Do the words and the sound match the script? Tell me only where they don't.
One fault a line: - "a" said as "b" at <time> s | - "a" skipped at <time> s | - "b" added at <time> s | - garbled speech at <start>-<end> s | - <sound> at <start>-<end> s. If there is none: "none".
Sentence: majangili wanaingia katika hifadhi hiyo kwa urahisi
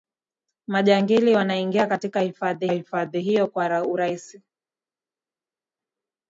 - "hifadhi" added at 2.7 s